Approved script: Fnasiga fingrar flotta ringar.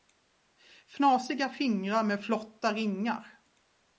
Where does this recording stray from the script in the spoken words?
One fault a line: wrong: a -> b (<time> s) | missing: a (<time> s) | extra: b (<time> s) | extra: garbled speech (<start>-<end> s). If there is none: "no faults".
extra: med (2.0 s)